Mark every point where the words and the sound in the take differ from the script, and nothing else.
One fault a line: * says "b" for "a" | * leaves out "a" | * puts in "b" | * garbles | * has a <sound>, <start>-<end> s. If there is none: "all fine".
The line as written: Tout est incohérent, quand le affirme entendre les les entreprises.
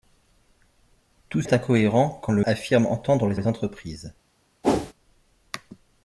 * has a whoosh, 4.6-4.9 s